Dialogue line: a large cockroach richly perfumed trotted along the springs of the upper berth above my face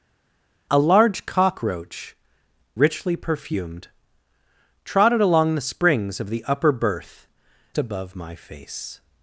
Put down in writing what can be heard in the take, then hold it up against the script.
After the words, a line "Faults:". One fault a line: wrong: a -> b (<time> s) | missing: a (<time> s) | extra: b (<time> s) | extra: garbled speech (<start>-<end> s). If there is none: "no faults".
a large cockroach richly perfumed trotted along the springs of the upper berth above my face
Faults:
no faults